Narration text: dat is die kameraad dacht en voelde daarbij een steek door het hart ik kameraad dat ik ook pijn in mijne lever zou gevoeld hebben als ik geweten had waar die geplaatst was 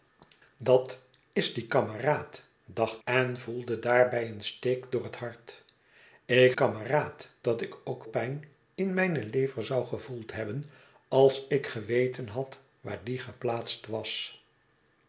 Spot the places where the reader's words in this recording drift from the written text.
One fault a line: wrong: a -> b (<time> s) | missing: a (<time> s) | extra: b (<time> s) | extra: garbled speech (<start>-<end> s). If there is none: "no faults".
no faults